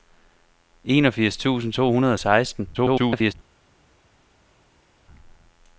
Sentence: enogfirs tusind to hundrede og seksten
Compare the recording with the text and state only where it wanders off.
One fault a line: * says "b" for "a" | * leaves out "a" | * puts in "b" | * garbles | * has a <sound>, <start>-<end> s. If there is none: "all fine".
* garbles